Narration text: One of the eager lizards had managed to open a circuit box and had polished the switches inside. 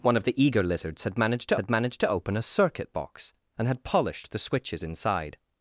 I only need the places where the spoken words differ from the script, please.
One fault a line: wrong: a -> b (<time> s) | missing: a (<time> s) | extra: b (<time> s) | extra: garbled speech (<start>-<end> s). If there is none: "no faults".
extra: had managed to (1.6 s)